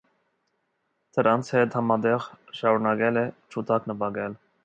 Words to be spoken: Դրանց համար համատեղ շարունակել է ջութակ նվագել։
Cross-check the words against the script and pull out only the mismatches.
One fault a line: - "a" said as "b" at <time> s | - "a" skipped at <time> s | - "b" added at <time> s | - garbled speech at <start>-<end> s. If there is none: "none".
- "համար" said as "հետ" at 1.6 s